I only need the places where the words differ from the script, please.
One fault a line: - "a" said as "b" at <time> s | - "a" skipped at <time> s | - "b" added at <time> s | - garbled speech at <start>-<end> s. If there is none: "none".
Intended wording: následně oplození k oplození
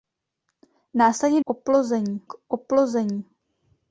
none